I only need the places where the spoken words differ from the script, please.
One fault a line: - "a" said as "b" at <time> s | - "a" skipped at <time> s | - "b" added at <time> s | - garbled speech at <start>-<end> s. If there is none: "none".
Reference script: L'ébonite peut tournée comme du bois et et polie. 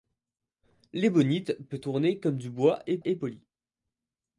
none